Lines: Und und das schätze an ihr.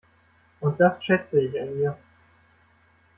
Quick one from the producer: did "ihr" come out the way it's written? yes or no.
yes